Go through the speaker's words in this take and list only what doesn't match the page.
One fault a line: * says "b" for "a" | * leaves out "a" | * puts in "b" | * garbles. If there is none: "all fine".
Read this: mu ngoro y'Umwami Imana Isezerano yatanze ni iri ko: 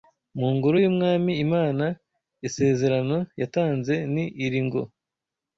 * says "ngo" for "ko"